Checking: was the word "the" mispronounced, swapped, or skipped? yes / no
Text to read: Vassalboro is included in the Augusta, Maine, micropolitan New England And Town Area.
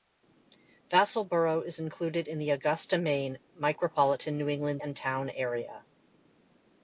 no